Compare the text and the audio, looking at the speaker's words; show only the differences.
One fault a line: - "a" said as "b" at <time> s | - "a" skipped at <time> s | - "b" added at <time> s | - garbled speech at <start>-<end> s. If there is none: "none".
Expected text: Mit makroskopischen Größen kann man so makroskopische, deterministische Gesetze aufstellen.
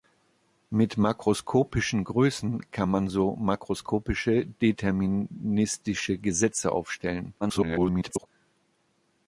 - garbled speech at 7.4-8.3 s